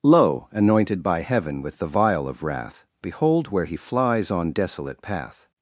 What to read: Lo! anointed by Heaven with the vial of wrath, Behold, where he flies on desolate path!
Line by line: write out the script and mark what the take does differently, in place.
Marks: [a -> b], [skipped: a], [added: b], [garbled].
Lo! anointed by Heaven with the vial of wrath, Behold, where he flies on desolate path!